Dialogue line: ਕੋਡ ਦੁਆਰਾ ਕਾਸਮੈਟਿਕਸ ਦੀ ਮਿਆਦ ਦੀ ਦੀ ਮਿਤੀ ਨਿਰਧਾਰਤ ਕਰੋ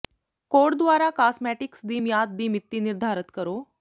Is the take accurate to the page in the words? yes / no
no